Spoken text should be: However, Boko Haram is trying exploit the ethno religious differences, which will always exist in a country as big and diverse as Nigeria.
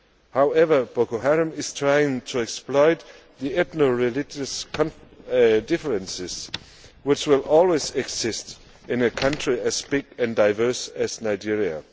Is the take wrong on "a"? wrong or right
right